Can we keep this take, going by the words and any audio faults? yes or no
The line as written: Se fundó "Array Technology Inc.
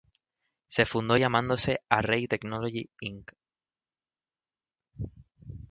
no